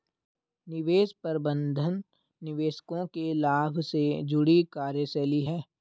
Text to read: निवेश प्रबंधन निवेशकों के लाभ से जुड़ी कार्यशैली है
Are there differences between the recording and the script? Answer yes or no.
no